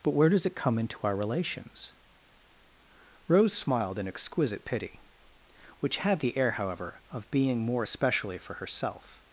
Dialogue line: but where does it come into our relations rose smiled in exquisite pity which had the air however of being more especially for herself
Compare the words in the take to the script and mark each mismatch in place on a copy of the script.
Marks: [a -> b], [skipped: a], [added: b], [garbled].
but where does it come into our relations rose smiled in exquisite pity which had the air however of being more especially for herself